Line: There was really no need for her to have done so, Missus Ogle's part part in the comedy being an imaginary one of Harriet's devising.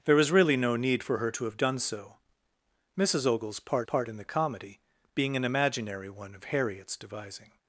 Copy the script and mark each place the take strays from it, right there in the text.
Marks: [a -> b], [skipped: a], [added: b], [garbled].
There was really no need for her to have done so, Missus Ogle's part part in the comedy being an imaginary one of Harriet's devising.